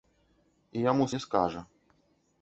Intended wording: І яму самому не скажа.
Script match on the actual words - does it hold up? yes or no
no